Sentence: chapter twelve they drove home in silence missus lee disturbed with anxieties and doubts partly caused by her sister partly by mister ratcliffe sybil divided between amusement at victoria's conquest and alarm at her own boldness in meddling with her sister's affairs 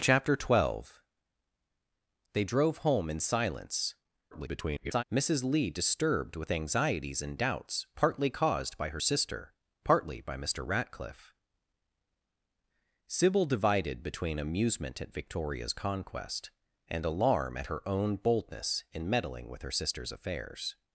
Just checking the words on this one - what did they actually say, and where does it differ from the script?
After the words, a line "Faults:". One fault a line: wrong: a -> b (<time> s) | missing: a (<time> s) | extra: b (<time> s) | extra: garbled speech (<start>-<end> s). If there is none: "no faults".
chapter twelve they drove home in silence [garbled] missus lee disturbed with anxieties and doubts partly caused by her sister partly by mister ratcliffe sybil divided between amusement at victoria's conquest and alarm at her own boldness in meddling with her sister's affairs
Faults:
extra: garbled speech (4.3-5.0 s)